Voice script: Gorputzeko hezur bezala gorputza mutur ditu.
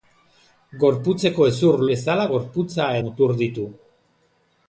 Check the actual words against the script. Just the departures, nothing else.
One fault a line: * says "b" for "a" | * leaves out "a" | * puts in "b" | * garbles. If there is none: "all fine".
all fine